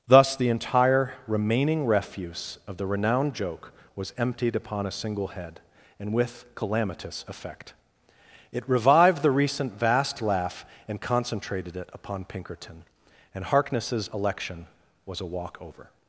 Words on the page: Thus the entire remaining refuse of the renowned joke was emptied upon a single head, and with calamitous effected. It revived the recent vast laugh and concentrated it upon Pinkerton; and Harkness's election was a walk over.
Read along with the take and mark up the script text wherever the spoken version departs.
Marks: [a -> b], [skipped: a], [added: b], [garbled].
Thus the entire remaining refuse of the renowned joke was emptied upon a single head, and with calamitous [effected. -> effect] It revived the recent vast laugh and concentrated it upon Pinkerton; and Harkness's election was a walk over.